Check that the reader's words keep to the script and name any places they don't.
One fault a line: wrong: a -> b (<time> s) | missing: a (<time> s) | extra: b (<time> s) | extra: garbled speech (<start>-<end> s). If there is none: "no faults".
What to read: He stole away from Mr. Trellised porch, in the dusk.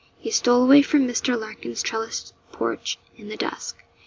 extra: Larkin's (1.4 s)